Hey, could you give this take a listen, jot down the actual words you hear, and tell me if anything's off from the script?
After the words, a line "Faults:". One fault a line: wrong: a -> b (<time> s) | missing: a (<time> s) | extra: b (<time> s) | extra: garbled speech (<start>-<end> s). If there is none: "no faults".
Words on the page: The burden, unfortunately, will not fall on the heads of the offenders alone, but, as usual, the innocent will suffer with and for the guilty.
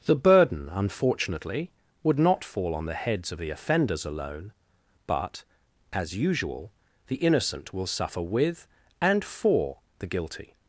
The burden, unfortunately, would not fall on the heads of the offenders alone, but, as usual, the innocent will suffer with and for the guilty.
Faults:
wrong: will -> would (2.0 s)